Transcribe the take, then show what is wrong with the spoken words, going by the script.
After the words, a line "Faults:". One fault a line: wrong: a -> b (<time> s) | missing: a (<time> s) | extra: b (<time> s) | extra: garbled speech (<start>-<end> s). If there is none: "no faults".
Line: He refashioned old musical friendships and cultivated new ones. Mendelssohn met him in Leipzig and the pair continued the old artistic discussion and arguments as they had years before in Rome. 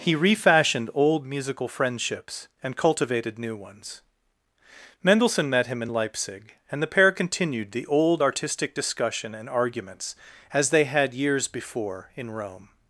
He refashioned old musical friendships and cultivated new ones. Mendelssohn met him in Leipzig and the pair continued the old artistic discussion and arguments as they had years before in Rome.
Faults:
no faults